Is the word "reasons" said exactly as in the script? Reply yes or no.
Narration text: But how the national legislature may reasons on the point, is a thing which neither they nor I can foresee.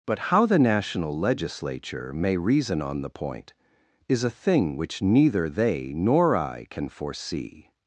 no